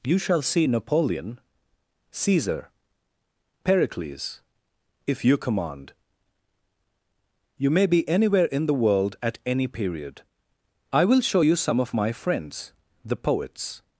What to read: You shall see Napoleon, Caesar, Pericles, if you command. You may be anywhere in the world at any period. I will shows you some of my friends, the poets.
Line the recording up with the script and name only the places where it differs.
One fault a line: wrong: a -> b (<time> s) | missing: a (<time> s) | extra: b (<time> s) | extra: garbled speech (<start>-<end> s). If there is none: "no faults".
wrong: shows -> show (11.2 s)